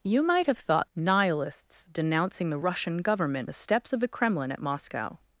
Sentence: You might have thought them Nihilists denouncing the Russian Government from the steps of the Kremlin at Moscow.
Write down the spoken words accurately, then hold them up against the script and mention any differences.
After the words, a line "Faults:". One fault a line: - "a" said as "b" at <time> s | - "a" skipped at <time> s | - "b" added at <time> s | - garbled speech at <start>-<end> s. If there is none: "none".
You might have thought Nihilists denouncing the Russian Government the steps of the Kremlin at Moscow.
Faults:
- "them" skipped at 0.9 s
- "from" skipped at 3.5 s